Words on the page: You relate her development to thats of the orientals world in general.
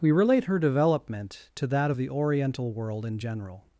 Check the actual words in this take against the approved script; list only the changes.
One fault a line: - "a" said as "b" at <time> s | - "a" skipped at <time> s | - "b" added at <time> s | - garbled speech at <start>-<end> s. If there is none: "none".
- "You" said as "We" at 0.0 s
- "thats" said as "that" at 1.7 s
- "orientals" said as "oriental" at 2.1 s